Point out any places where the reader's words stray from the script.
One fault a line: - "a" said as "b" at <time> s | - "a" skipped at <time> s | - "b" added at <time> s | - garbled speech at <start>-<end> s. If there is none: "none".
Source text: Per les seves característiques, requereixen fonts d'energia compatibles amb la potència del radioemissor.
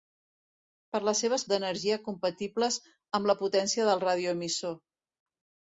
- "característiques requereixen fonts" skipped at 1.4 s